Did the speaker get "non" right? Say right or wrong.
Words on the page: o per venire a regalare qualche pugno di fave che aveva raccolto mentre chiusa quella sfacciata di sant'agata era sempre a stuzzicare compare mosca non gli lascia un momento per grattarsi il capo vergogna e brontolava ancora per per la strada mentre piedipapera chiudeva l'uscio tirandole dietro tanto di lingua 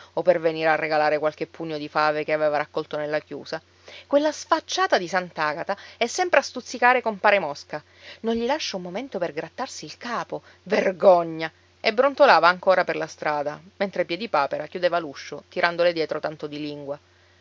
right